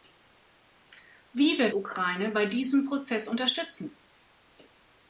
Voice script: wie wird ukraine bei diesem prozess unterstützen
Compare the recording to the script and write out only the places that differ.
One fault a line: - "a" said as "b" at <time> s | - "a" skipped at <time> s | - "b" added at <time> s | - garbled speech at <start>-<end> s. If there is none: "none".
none